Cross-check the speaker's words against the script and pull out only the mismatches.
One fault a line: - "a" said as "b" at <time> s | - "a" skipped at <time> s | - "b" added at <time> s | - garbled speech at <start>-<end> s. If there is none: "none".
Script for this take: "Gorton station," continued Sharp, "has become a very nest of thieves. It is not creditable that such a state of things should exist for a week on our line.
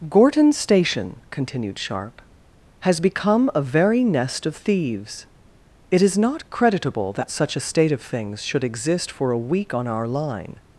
none